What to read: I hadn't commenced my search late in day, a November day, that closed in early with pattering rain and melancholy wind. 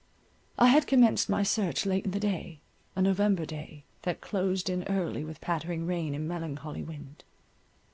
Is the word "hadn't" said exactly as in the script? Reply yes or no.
no